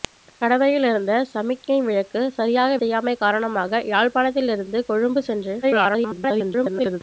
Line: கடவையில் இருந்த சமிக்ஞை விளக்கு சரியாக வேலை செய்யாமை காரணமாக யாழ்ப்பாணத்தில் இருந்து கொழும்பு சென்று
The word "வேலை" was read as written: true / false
false